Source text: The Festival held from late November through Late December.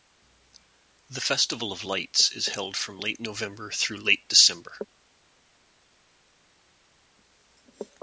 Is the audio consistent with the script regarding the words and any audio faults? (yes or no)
no